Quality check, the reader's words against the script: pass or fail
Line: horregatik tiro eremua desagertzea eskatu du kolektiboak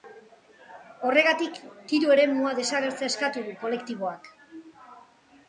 pass